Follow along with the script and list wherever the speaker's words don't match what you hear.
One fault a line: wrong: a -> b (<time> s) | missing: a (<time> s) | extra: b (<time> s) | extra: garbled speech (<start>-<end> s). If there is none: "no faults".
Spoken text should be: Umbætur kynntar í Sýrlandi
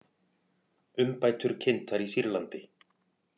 no faults